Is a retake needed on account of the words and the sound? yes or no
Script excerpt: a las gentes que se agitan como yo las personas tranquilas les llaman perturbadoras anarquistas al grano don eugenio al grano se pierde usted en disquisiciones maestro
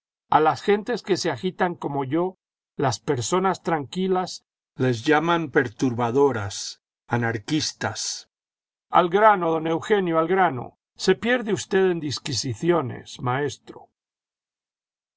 no